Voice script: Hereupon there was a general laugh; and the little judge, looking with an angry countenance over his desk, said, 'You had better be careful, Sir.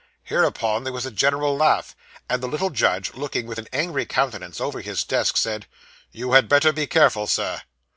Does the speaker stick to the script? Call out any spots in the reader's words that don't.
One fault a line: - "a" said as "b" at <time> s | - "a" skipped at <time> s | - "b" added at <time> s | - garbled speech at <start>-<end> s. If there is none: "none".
none